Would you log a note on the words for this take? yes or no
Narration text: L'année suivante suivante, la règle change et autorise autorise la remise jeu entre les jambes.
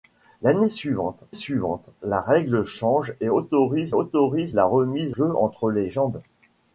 no